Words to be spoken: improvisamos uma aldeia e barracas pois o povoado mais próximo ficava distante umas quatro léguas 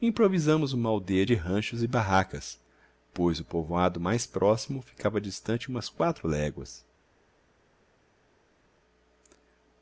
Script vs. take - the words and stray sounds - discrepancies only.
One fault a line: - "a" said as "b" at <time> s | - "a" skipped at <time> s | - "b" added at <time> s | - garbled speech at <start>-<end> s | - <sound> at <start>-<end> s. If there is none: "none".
- "de ranchos" added at 1.2 s